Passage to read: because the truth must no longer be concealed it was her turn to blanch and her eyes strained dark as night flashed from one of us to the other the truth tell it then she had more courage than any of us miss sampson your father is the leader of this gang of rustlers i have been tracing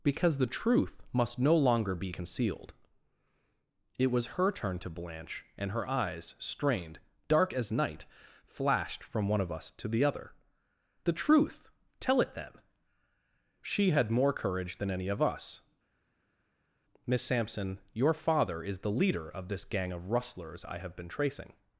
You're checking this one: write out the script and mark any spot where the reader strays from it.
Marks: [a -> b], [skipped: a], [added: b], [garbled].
because the truth must no longer be concealed it was her turn to blanch and her eyes strained dark as night flashed from one of us to the other the truth tell it then she had more courage than any of us miss sampson your father is the leader of this gang of rustlers i have been tracing